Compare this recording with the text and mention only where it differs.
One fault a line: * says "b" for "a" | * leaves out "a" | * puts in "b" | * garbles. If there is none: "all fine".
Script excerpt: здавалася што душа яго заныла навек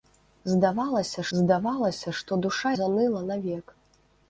* puts in "здавалася"
* leaves out "яго"